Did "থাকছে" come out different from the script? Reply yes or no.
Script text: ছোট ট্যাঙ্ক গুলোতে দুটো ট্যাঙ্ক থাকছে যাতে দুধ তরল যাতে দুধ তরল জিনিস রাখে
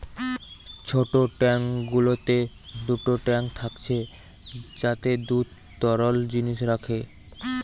no